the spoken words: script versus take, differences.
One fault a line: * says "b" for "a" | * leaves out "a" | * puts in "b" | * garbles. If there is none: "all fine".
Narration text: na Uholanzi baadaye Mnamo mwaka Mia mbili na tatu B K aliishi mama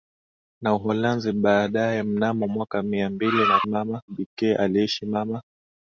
* says "mama" for "tatu"